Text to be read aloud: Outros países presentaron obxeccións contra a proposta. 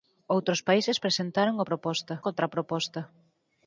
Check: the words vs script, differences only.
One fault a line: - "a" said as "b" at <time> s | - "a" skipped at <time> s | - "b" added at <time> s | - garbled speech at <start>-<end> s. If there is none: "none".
- "obxeccións" said as "proposta" at 1.7 s